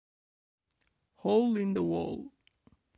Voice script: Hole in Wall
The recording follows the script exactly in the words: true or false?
false